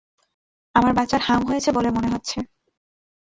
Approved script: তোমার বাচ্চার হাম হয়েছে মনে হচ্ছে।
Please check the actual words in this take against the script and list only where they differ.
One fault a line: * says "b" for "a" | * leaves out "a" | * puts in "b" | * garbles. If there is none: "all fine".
* says "আমার" for "তোমার"
* puts in "বলে"